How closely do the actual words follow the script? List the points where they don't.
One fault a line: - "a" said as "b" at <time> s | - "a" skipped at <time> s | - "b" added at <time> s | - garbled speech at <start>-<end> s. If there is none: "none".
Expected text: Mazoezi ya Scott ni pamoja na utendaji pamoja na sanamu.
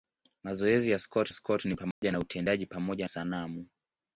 - "Scott" added at 1.3 s
- "na" skipped at 3.1 s